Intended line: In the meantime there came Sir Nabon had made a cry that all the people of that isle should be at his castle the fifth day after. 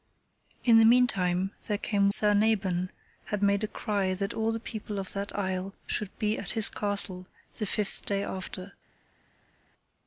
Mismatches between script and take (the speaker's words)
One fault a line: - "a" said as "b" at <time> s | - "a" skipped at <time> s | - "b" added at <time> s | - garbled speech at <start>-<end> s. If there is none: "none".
none